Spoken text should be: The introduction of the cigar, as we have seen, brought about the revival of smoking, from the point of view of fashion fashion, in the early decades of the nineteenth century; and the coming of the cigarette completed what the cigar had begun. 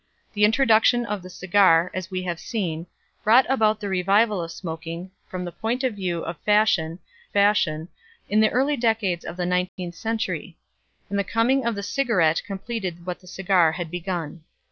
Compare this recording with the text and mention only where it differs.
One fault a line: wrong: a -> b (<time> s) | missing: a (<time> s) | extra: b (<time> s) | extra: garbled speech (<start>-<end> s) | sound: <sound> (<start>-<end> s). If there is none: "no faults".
sound: dropout (9.7-9.8 s)